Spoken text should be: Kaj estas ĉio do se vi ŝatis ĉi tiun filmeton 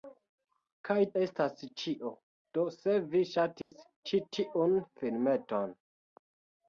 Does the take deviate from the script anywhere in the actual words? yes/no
no